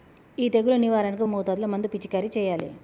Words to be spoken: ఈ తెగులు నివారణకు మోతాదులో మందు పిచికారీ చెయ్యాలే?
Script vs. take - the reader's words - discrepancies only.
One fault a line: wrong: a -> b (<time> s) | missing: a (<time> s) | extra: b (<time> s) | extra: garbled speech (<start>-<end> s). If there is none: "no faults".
no faults